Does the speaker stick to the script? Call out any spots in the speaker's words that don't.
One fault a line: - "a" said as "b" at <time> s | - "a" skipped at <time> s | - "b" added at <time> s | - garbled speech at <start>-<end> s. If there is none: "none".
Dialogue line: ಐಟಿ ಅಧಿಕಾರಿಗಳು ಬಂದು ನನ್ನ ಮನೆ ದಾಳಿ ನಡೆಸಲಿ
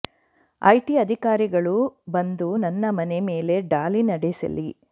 - "ಮೇಲೆ" added at 3.3 s